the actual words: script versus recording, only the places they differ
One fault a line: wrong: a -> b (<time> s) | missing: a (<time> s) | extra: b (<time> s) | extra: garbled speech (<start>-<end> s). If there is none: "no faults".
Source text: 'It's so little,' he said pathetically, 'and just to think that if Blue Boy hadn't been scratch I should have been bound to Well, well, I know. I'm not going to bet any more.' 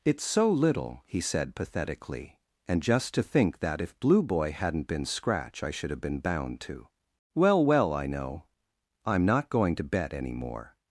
no faults